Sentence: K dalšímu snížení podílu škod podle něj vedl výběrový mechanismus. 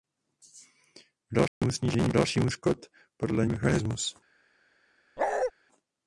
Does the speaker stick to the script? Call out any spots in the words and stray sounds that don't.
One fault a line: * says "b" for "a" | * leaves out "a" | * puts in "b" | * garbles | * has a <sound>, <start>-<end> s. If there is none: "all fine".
* has a dropout, 1.5-1.6 s
* says "dalšímu" for "podílu"
* leaves out "něj vedl výběrový"
* has a bark, 5.2-5.5 s